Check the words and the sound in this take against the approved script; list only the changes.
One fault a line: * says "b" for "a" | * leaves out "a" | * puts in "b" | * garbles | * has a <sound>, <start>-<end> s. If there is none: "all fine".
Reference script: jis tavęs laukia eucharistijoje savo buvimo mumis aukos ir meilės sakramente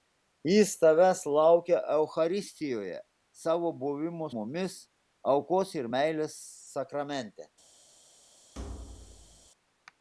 * has a thud, 8.5-9.5 s